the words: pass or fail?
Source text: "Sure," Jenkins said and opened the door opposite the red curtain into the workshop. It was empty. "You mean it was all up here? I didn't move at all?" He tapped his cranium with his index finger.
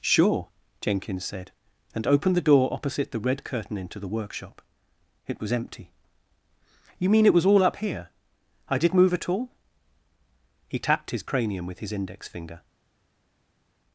fail